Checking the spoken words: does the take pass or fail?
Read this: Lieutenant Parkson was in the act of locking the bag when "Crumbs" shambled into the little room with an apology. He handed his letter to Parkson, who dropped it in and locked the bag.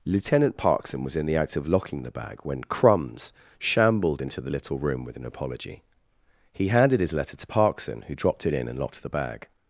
pass